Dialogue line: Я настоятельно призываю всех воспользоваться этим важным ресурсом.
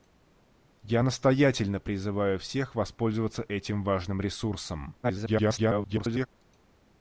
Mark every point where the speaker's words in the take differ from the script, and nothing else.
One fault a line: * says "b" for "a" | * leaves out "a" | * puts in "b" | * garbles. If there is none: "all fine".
* garbles